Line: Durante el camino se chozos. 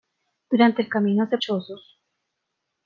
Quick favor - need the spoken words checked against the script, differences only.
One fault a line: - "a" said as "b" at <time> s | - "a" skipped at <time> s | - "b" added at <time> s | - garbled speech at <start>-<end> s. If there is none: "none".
none